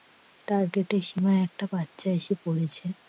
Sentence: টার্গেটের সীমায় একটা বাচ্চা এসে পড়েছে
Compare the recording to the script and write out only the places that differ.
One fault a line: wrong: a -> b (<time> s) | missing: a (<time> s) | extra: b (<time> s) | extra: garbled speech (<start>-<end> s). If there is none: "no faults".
no faults